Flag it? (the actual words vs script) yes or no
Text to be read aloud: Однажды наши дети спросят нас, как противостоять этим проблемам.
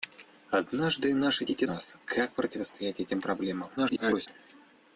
yes